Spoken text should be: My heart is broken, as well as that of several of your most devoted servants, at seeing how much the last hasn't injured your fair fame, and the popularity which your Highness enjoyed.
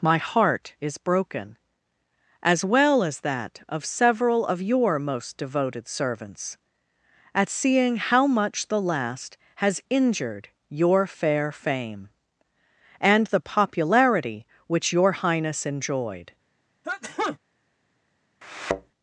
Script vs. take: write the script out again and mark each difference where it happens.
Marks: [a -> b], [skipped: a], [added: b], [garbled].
My heart is broken, as well as that of several of your most devoted servants, at seeing how much the last [hasn't -> has] injured your fair fame, and the popularity which your Highness enjoyed.